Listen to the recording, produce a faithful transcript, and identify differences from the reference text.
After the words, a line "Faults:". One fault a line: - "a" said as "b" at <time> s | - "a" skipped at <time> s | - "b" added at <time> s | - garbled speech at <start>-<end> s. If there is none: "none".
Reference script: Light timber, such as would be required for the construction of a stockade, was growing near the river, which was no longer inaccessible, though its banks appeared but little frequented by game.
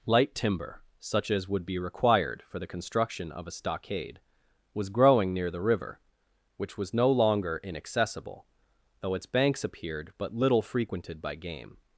Light timber, such as would be required for the construction of a stockade, was growing near the river, which was no longer inaccessible, though its banks appeared but little frequented by game.
Faults:
none